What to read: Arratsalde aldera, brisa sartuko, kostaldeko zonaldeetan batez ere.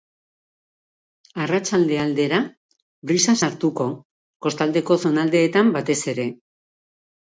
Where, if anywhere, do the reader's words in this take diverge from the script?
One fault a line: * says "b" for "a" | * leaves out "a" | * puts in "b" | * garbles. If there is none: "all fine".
all fine